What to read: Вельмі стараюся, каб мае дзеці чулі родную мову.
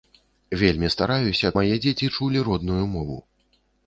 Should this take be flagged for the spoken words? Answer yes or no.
yes